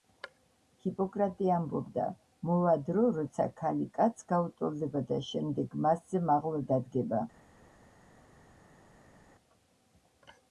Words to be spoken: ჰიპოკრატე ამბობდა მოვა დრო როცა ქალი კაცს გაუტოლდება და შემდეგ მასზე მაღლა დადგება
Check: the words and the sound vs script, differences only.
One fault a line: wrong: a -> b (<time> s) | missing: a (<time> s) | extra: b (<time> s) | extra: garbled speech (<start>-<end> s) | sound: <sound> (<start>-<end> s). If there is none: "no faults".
no faults